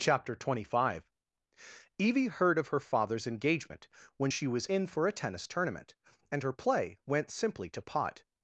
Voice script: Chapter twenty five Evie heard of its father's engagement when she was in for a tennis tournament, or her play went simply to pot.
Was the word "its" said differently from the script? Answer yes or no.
yes